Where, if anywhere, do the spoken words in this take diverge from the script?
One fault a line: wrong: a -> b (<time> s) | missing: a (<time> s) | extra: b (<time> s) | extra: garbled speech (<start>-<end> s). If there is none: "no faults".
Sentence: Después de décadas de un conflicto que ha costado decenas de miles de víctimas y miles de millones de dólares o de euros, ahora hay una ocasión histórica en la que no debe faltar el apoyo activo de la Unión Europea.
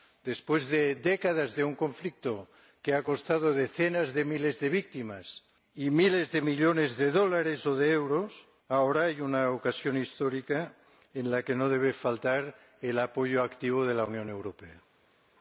no faults